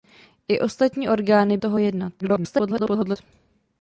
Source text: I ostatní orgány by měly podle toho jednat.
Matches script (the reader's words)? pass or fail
fail